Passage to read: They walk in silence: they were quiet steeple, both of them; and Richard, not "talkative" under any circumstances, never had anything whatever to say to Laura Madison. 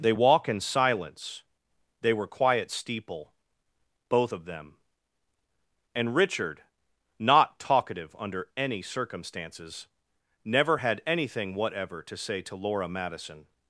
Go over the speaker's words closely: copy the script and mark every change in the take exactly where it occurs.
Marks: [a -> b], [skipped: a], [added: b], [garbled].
They walk in silence: they were quiet steeple, both of them; and Richard, not "talkative" under any circumstances, never had anything whatever to say to Laura Madison.